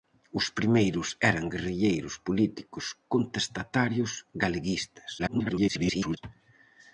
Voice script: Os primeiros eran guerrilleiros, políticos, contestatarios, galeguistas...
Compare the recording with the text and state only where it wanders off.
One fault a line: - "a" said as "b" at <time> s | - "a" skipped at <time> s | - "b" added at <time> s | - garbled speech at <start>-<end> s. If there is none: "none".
- garbled speech at 5.2-6.2 s